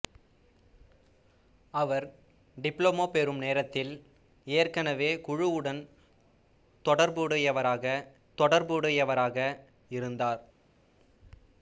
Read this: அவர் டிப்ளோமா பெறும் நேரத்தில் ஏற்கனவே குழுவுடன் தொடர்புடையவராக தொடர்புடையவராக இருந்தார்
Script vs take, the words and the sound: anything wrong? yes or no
no